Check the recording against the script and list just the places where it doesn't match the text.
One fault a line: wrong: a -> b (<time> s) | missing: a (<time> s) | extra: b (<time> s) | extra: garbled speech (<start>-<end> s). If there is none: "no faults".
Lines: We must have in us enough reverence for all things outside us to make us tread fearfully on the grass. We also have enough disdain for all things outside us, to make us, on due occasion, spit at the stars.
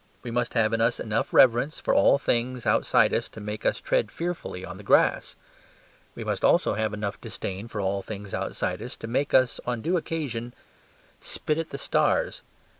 extra: must (6.2 s)